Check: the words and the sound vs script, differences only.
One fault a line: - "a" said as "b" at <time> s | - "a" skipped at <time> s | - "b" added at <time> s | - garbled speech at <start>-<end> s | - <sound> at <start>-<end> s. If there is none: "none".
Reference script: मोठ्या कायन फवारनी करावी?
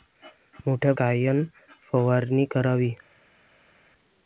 none